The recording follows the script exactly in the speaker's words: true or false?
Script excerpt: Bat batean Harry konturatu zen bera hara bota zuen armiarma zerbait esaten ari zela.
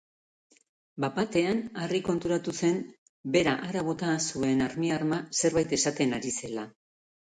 true